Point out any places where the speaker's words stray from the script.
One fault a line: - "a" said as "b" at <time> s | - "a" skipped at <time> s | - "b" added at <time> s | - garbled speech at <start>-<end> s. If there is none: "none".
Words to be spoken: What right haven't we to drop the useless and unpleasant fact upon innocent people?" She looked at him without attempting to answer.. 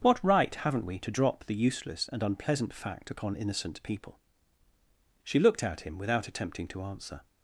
none